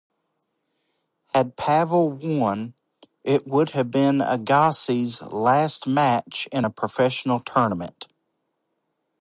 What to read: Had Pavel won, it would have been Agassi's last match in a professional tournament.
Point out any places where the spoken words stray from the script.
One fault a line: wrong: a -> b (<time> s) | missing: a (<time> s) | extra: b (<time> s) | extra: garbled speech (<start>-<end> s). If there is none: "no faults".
no faults